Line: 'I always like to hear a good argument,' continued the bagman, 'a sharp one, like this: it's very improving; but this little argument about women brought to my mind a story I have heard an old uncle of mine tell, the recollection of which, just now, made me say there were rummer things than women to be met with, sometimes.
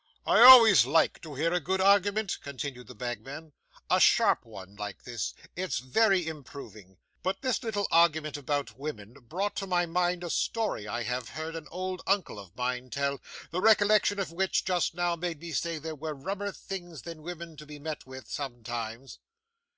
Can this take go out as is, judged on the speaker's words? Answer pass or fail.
pass